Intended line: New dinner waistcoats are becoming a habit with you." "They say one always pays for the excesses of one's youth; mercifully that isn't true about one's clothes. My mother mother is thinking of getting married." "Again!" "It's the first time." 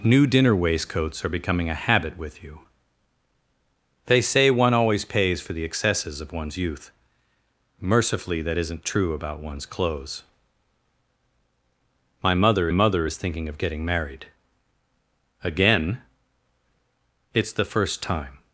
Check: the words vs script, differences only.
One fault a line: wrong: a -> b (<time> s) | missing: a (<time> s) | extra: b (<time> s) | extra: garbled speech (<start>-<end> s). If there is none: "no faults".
no faults